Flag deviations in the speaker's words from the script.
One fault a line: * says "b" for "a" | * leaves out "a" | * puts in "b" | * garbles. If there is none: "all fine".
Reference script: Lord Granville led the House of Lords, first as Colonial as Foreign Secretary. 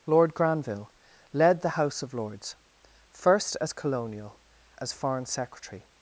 all fine